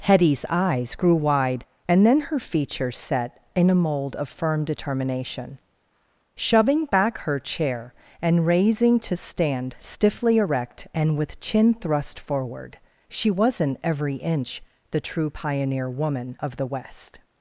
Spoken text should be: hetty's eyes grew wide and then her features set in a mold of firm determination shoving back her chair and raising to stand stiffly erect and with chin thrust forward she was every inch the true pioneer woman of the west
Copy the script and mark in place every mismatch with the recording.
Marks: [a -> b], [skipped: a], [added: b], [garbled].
hetty's eyes grew wide and then her features set in a mold of firm determination shoving back her chair and raising to stand stiffly erect and with chin thrust forward she [was -> wasn't] every inch the true pioneer woman of the west